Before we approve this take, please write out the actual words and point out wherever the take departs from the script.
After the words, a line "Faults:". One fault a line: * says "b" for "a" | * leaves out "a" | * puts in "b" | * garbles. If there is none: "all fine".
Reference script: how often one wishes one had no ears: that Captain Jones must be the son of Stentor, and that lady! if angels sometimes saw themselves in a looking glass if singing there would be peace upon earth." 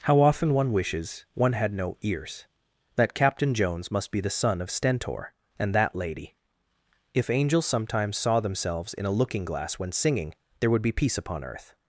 how often one wishes one had no ears: that Captain Jones must be the son of Stentor, and that lady! if angels sometimes saw themselves in a looking glass when singing there would be peace upon earth."
Faults:
* says "when" for "if"